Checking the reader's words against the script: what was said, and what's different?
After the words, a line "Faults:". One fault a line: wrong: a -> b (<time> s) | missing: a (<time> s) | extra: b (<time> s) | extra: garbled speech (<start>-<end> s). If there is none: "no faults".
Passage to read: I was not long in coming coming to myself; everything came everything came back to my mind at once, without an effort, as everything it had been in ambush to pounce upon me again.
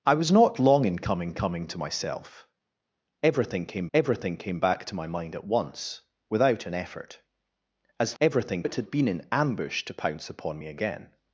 I was not long in coming coming to myself; everything came everything came back to my mind at once, without an effort, as everything it had been in ambush to pounce upon me again.
Faults:
no faults